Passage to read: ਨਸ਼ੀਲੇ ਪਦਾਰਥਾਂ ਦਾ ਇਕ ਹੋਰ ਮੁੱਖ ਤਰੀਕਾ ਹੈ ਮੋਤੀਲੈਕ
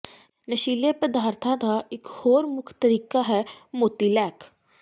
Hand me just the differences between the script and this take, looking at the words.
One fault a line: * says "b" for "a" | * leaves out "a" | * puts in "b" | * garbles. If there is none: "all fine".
all fine